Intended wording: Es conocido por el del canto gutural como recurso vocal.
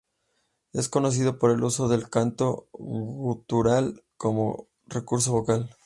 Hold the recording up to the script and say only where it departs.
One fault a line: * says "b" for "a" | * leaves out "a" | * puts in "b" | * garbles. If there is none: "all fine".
* puts in "uso"